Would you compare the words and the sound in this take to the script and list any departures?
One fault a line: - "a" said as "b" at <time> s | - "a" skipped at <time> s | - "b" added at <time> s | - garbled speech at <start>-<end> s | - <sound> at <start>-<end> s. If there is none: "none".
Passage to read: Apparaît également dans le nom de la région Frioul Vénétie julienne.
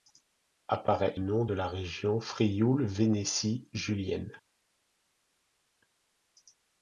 - "également dans le" skipped at 1.1 s